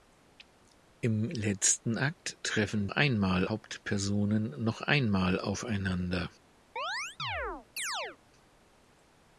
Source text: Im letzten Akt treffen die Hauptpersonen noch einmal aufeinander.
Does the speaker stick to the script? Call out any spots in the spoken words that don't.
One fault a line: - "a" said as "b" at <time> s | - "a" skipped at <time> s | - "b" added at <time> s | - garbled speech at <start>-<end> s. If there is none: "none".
- "die" said as "einmal" at 2.9 s